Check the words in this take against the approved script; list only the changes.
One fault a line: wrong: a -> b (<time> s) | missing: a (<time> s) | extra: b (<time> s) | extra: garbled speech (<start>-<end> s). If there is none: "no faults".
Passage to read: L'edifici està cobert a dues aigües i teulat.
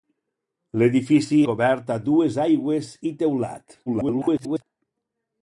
missing: està (1.4 s)
extra: garbled speech (3.9-4.6 s)